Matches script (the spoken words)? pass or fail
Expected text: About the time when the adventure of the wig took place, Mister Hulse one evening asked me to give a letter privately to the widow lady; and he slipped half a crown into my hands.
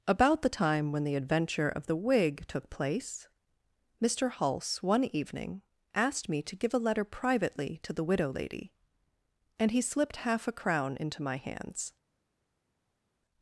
pass